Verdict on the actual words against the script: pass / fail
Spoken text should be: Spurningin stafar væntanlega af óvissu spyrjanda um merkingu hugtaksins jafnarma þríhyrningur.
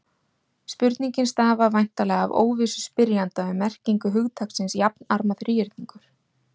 pass